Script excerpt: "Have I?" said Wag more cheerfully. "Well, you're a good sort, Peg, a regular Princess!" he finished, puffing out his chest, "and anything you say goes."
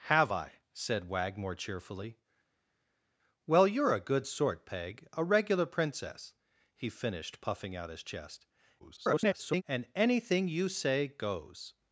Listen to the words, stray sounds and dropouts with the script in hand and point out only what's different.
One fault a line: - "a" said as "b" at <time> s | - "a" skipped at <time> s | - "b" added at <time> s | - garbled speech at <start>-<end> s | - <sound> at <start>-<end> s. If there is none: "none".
- garbled speech at 8.8-9.6 s